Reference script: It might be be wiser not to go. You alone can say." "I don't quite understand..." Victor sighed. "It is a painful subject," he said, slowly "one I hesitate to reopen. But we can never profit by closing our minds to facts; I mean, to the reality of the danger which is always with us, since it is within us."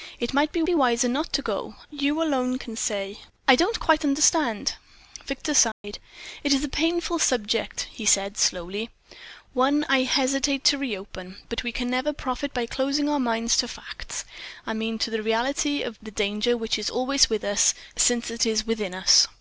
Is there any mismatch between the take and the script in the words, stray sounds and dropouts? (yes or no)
yes